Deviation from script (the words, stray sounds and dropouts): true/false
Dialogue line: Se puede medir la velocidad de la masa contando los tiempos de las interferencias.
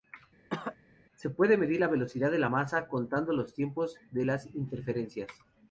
true